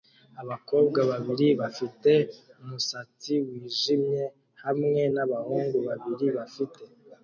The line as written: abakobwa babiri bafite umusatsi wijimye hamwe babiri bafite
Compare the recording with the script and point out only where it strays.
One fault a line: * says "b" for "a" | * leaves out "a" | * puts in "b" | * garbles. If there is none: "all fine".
* puts in "nabahungu"